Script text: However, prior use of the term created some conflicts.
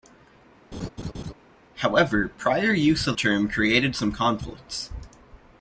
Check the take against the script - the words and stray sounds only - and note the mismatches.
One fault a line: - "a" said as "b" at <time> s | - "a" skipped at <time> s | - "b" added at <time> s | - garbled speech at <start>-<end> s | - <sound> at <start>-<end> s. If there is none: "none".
- laugh at 0.7-1.3 s
- "the" skipped at 3.1 s